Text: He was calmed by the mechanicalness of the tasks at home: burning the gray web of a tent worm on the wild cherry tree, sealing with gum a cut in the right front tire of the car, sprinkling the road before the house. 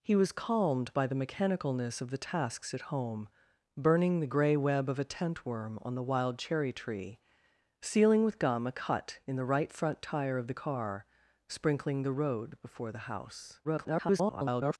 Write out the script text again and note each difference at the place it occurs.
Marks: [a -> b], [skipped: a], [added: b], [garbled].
He was calmed by the mechanicalness of the tasks at home: burning the gray web of a tent worm on the wild cherry tree, sealing with gum a cut in the right front tire of the car, sprinkling the road before the house. [garbled]